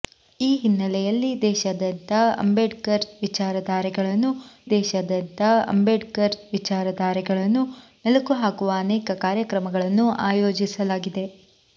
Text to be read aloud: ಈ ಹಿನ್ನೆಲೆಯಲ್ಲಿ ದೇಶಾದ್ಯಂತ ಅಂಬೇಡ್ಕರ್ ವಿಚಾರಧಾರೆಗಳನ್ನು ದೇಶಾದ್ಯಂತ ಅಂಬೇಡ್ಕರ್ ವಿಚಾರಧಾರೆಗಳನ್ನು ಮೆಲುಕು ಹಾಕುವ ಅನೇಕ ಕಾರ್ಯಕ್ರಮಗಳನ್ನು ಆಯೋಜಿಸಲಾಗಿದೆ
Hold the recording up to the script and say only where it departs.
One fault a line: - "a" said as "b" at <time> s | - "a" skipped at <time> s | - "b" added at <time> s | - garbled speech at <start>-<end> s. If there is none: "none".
none